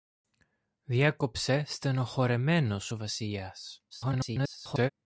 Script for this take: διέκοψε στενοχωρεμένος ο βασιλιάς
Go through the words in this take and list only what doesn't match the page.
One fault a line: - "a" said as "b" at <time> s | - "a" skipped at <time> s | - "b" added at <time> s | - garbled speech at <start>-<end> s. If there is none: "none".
- garbled speech at 3.9-4.9 s